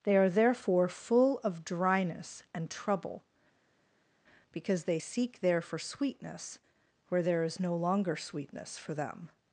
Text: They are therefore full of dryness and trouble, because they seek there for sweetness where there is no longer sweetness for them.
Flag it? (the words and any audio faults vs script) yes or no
no